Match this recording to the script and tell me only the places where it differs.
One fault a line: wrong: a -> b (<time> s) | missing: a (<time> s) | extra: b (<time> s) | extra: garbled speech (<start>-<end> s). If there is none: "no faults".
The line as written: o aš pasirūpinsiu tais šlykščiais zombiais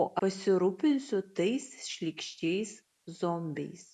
missing: aš (0.1 s)